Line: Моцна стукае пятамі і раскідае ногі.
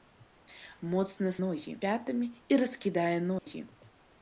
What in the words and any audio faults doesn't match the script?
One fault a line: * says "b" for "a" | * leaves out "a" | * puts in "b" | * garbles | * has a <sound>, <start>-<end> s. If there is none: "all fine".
* says "ногі" for "стукае"
* has a dropout, 3.4-3.5 s